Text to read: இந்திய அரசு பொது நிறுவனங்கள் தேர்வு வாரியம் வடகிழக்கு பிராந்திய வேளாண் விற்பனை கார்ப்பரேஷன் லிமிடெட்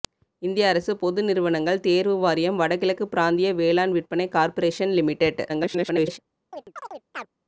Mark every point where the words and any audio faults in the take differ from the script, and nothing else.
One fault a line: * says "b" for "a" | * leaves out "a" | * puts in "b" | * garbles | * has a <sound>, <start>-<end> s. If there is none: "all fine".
* garbles
* has a chirp, 6.5-7.3 s